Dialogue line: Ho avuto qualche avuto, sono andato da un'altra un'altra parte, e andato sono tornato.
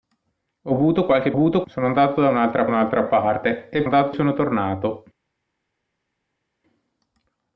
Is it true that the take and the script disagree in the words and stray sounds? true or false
false